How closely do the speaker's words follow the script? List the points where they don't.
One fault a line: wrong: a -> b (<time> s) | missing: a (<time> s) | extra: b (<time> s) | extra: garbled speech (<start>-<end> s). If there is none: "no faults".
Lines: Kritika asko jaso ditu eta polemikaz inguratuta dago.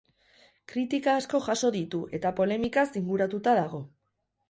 no faults